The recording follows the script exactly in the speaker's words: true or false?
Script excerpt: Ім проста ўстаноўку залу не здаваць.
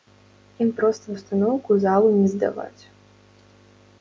true